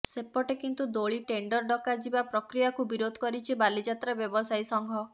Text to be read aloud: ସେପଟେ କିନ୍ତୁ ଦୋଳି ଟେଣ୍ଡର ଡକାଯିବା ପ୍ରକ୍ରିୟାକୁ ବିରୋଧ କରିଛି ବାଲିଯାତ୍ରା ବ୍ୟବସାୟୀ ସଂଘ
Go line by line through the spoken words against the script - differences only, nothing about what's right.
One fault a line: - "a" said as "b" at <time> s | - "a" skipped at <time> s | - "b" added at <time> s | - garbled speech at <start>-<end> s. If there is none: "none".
none